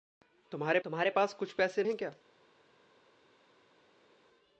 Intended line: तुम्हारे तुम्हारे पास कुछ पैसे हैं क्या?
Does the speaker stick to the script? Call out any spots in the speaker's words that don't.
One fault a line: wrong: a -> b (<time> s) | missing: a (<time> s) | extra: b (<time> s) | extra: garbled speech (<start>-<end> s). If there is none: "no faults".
no faults